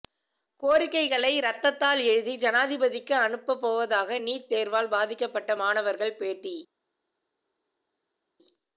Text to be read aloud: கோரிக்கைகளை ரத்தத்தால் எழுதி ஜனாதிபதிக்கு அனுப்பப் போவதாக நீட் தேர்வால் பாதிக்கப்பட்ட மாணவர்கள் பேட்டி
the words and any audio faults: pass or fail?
pass